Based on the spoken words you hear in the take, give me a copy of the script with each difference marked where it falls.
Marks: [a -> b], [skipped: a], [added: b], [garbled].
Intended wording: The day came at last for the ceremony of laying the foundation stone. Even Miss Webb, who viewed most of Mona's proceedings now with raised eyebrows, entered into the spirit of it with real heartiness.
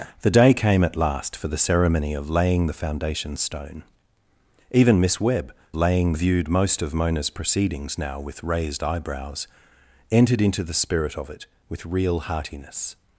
The day came at last for the ceremony of laying the foundation stone. Even Miss Webb, [who -> laying] viewed most of Mona's proceedings now with raised eyebrows, entered into the spirit of it with real heartiness.